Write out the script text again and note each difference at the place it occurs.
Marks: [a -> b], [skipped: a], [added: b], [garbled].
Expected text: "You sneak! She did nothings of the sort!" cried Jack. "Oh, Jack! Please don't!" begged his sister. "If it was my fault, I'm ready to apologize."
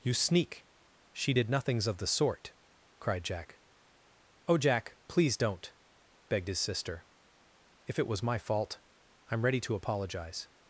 "You sneak! She did nothings of the sort!" cried Jack. "Oh, Jack! Please don't!" begged his sister. "If it was my fault, I'm ready to apologize."